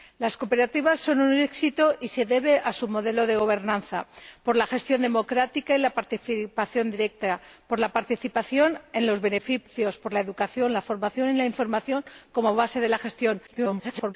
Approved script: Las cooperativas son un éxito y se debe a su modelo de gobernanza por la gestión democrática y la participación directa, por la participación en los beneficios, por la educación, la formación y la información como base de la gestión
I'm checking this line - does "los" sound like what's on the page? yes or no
yes